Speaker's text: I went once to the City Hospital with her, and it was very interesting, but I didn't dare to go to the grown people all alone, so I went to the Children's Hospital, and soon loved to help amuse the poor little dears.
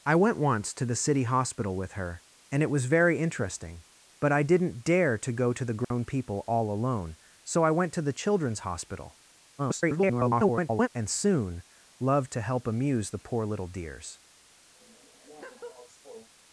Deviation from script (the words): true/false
true